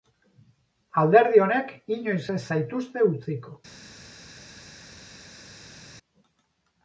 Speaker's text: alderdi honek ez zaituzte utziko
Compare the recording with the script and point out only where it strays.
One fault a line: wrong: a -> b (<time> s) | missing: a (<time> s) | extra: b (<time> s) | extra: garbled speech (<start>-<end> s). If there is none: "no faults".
extra: inoiz (2.0 s)